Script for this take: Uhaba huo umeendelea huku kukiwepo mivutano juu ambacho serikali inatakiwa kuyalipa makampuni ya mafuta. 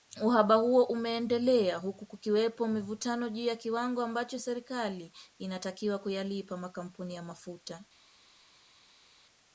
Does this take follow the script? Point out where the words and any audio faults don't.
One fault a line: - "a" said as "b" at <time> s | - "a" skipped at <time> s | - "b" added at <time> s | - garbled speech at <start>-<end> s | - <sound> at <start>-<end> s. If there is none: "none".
- "ya kiwango" added at 3.4 s